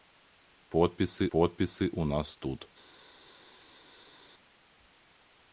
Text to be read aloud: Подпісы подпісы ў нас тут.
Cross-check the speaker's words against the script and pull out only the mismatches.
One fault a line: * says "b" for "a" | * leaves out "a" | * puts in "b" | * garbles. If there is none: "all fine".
all fine